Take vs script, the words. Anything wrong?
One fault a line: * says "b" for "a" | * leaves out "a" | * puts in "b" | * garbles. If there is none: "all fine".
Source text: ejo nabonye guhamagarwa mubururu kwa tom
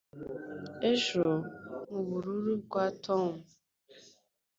* leaves out "nabonye guhamagarwa"